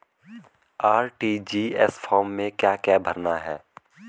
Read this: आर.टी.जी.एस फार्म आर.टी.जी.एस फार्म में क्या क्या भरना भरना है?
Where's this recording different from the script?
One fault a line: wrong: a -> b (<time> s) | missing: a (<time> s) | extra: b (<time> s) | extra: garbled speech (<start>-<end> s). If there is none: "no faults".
missing: आर.टी.जी.एस फार्म (2.3 s)
missing: भरना (3.4 s)